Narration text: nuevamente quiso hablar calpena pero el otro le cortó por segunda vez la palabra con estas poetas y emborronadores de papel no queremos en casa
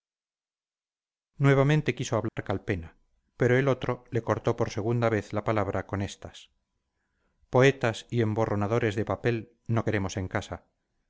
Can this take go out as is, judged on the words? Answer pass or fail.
pass